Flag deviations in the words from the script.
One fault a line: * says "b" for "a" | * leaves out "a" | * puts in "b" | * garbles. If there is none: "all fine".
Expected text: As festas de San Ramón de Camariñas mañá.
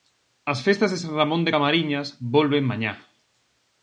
* puts in "volven"